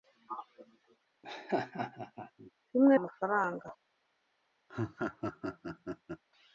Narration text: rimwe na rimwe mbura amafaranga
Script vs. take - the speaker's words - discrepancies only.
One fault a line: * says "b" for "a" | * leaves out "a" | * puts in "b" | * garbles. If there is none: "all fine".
* leaves out "na rimwe mbura"